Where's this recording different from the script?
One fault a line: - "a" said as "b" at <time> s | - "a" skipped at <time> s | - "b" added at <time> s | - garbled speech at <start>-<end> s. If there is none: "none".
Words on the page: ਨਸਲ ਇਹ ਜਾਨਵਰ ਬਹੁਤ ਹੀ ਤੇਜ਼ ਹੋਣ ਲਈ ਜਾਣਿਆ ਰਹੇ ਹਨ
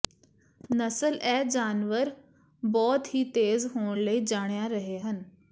none